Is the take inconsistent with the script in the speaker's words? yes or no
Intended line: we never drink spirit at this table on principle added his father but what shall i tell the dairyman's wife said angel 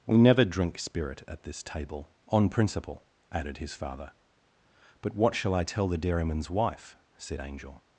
no